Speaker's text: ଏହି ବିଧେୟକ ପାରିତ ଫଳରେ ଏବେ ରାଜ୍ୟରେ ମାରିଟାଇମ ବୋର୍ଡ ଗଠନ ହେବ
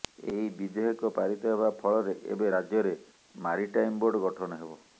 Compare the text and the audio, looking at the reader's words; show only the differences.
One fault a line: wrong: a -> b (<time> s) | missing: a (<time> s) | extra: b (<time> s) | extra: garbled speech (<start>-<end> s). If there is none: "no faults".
extra: ହେବା (1.5 s)